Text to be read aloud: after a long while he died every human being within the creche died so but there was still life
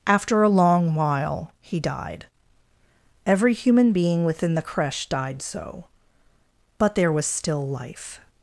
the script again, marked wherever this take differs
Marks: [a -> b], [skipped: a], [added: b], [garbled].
after a long while he died every human being within the creche died so but there was still life